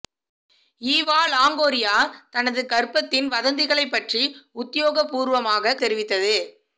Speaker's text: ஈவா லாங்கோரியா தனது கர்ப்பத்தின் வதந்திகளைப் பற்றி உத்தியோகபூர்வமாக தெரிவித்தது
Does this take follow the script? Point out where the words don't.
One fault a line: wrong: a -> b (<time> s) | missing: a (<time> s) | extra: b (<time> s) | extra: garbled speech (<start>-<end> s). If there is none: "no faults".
no faults